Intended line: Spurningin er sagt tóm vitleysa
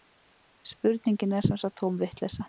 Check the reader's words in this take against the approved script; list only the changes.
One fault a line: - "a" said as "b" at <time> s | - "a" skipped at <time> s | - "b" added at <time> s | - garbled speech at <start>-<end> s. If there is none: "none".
- "sem" added at 1.5 s